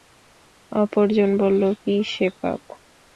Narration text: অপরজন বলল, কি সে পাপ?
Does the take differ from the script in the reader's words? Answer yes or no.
no